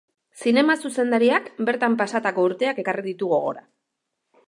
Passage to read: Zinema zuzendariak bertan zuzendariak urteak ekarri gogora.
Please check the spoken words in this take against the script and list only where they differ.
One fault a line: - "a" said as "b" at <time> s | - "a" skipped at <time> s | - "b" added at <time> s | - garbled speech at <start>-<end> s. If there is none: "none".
- "zuzendariak" said as "pasatako" at 2.0 s
- "ditu" added at 3.1 s